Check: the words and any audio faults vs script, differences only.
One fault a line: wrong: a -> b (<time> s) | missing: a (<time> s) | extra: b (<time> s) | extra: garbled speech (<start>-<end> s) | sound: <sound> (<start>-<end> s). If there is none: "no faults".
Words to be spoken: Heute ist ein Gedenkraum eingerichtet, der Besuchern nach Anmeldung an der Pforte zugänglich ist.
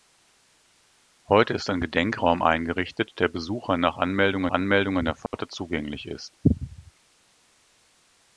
extra: Anmeldung (4.5 s)
sound: dropout (5.3-5.3 s)